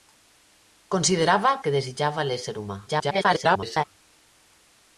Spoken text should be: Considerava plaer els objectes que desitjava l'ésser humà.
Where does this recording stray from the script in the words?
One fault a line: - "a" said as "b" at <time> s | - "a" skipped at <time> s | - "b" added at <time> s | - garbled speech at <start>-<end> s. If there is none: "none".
- "plaer els objectes" skipped at 1.5 s
- garbled speech at 2.9-3.8 s